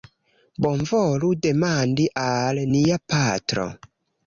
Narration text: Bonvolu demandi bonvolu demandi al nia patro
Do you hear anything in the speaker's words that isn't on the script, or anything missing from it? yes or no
yes